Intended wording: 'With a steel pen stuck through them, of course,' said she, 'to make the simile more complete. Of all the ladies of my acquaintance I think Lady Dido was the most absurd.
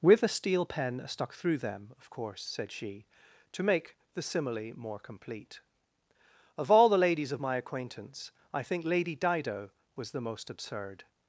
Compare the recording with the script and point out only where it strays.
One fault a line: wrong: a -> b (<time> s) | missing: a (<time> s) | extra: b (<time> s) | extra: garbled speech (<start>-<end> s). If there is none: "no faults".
no faults